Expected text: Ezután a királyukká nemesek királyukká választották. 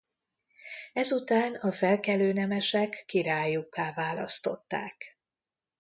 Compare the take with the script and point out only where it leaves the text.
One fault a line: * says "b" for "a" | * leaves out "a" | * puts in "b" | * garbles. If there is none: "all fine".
* says "felkelő" for "királyukká"